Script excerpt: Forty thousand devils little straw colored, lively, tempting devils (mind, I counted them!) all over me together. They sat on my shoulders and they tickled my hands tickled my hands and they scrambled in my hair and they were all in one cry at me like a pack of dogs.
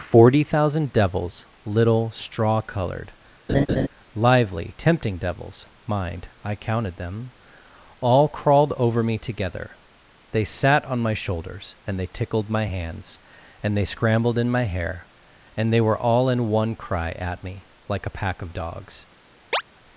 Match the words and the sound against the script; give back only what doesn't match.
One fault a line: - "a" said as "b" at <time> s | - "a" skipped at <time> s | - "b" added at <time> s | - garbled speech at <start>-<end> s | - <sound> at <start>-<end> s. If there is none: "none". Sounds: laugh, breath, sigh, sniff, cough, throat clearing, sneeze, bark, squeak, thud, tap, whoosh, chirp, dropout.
- laugh at 3.5-3.9 s
- "crawled" added at 8.3 s
- "tickled my hands" skipped at 13.2 s
- chirp at 19.5-19.6 s